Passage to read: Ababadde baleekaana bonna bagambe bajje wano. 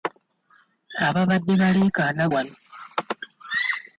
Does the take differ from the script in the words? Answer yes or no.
yes